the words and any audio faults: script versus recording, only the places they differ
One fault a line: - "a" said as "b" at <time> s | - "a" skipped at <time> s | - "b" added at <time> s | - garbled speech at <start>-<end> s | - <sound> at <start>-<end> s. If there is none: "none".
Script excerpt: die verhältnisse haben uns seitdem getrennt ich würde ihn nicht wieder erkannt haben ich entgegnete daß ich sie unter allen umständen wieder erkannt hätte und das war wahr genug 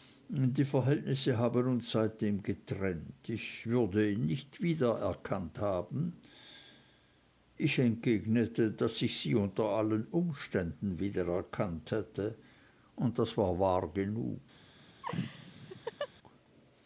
- laugh at 15.0-16.1 s